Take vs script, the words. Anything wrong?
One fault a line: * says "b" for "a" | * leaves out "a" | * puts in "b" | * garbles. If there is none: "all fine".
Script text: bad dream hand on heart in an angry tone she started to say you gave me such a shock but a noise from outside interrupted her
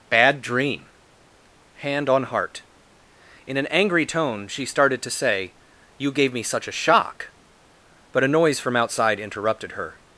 all fine